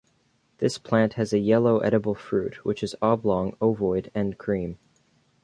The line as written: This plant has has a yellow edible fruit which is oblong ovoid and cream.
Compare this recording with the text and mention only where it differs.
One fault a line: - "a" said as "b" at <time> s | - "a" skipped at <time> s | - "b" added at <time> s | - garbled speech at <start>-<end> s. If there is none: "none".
- "has" skipped at 1.3 s